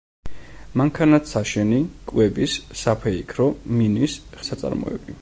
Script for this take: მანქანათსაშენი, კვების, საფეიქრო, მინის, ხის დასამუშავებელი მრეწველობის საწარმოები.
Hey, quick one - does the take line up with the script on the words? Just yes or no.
no